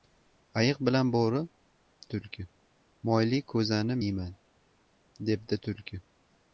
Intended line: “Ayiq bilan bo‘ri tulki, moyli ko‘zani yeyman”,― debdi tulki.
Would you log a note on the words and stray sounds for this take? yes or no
no